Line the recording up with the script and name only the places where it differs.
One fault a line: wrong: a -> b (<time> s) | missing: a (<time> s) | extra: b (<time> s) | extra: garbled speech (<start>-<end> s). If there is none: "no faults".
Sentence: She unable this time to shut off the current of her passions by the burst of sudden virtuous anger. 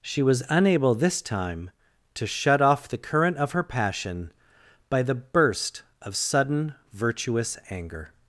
extra: was (0.2 s)
wrong: passions -> passion (3.6 s)